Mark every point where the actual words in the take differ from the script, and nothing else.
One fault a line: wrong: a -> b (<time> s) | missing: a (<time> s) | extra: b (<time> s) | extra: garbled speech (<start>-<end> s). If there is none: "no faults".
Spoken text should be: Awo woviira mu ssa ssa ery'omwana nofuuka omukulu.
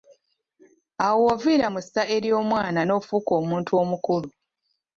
missing: ssa (2.0 s)
extra: omuntu (3.4 s)